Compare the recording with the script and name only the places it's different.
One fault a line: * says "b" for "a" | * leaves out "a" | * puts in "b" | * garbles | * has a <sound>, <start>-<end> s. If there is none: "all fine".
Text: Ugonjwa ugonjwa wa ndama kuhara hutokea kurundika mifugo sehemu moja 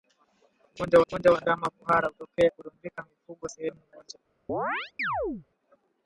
* has a chirp, 4.5-5.5 s